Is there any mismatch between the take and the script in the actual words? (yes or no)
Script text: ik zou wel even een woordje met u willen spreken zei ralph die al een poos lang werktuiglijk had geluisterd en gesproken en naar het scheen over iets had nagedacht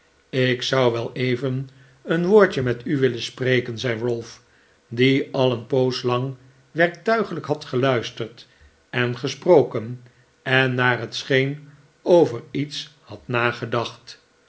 no